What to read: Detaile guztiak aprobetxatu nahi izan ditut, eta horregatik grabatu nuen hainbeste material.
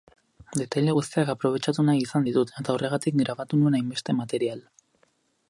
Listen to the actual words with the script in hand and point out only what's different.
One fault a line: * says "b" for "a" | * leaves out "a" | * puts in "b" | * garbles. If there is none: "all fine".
all fine